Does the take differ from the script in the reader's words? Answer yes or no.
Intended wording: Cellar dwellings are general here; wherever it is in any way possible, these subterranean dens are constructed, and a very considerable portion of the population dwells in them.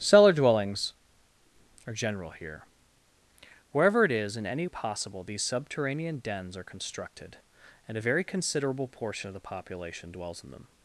yes